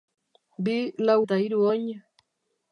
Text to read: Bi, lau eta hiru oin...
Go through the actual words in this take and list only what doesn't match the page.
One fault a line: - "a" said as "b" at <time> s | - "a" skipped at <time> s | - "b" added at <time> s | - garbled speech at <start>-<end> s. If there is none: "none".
none